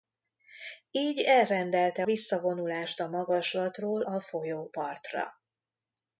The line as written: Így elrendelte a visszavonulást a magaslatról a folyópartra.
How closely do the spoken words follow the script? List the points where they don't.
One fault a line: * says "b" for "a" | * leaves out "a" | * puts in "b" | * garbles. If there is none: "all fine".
* leaves out "a"